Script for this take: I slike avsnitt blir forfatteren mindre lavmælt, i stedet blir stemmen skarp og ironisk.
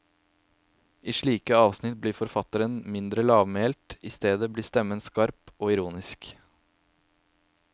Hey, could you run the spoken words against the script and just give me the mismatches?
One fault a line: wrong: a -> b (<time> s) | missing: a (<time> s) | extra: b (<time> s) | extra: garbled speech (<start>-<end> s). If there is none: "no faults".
no faults